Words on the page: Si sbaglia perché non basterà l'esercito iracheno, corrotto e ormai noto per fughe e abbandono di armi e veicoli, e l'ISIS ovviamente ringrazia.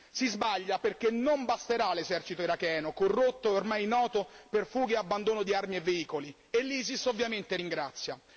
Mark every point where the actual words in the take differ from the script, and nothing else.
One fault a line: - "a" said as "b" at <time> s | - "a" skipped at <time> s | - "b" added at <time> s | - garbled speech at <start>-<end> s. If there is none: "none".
none